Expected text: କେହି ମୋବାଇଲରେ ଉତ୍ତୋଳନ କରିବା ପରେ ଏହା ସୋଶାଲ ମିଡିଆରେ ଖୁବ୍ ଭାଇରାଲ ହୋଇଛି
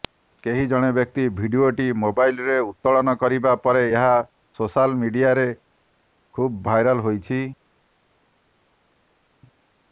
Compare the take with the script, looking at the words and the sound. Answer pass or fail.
fail